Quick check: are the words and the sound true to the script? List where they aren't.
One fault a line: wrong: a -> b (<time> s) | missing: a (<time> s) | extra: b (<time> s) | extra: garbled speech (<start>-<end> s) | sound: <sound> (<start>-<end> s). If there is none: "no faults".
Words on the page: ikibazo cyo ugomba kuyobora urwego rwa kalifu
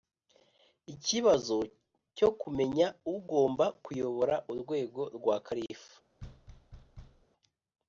extra: kumenya (2.4 s)
sound: thud (6.2-7.3 s)